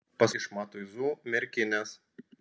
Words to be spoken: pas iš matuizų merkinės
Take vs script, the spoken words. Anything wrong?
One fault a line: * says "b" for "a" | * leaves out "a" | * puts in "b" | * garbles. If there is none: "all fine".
all fine